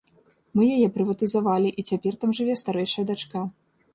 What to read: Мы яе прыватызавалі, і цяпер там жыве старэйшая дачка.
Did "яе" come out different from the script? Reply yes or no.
no